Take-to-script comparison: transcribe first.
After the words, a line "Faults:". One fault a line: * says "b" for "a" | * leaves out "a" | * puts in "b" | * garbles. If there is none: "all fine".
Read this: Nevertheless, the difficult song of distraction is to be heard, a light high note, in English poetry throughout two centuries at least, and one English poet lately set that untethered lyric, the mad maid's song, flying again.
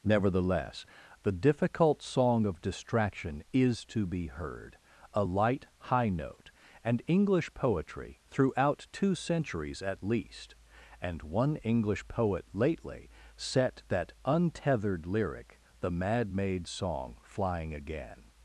Nevertheless, the difficult song of distraction is to be heard, a light high note, and English poetry throughout two centuries at least, and one English poet lately set that untethered lyric, the mad maid's song, flying again.
Faults:
* says "and" for "in"